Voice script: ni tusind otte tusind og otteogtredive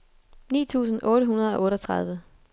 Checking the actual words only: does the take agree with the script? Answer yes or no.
no